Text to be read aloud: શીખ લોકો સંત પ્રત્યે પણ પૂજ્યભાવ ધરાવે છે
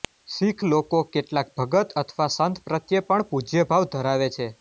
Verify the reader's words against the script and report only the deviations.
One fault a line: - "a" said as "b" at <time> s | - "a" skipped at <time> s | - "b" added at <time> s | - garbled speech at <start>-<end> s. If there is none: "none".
- "કેટલાક ભગત અથવા" added at 1.1 s